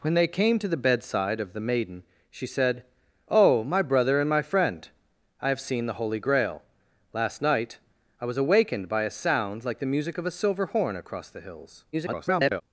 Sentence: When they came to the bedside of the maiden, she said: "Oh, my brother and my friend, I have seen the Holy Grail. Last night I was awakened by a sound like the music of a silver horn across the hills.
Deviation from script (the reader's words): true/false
true